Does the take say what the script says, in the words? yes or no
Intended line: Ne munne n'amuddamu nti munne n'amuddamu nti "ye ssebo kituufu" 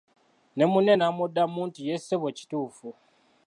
no